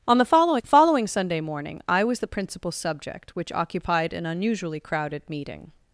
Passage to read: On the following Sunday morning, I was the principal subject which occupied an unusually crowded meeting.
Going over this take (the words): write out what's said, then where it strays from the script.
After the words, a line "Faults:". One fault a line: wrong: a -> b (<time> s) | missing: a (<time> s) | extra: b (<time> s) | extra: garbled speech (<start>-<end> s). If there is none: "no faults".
On the following following Sunday morning, I was the principal subject which occupied an unusually crowded meeting.
Faults:
extra: following (0.7 s)